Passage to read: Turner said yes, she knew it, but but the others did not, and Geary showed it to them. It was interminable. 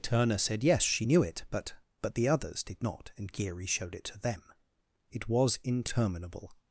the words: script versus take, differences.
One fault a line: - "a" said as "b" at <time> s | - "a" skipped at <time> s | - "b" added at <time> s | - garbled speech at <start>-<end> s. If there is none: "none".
none